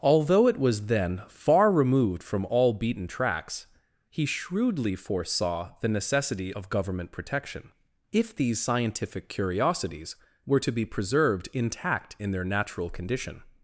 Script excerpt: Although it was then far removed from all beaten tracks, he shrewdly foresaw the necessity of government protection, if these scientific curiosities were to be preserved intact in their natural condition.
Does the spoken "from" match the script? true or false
true